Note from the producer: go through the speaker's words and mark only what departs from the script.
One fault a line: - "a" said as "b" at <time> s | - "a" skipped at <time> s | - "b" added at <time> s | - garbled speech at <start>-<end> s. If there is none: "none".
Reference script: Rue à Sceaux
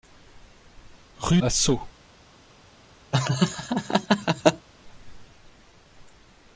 none